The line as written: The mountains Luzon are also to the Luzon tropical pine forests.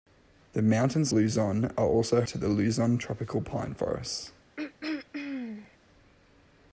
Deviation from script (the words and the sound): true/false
true